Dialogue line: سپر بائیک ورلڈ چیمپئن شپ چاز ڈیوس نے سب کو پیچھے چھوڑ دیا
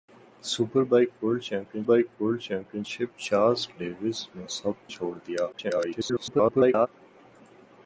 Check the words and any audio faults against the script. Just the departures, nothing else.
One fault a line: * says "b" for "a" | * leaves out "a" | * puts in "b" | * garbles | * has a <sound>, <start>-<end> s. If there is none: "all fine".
* puts in "بائیک ورلڈ چیمپئن"
* leaves out "کو پیچھے"
* garbles